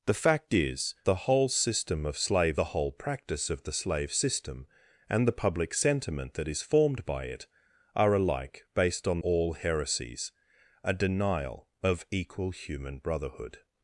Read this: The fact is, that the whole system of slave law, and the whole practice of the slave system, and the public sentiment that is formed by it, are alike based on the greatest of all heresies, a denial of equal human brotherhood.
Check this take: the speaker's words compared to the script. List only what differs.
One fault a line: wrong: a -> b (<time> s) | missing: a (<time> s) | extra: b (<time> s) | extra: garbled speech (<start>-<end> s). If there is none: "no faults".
missing: that (0.9 s)
missing: law and (2.6 s)
missing: the greatest of (9.2 s)